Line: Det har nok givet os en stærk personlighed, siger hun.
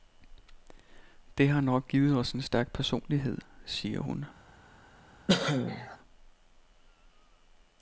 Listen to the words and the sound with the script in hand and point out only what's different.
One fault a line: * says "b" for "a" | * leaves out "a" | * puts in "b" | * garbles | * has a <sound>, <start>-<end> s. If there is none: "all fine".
* has a cough, 5.3-6.0 s